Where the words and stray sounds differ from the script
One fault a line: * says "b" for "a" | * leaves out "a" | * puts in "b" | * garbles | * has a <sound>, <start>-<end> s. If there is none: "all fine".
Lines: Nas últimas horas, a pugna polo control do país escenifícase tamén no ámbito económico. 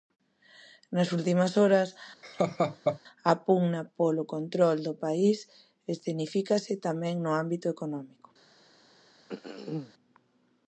* has a laugh, 2.2-3.0 s
* has a throat clearing, 9.3-9.9 s